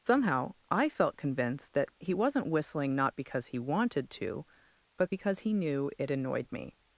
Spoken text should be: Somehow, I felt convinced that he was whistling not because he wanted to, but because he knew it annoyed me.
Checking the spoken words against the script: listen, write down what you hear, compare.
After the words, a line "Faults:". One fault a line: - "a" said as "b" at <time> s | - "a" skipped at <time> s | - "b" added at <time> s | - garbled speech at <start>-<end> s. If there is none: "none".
Somehow, I felt convinced that he wasn't whistling not because he wanted to, but because he knew it annoyed me.
Faults:
- "was" said as "wasn't" at 2.1 s